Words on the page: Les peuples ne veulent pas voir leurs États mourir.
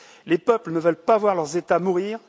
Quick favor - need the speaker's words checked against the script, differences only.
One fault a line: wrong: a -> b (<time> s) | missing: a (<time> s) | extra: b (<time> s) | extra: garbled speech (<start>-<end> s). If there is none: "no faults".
no faults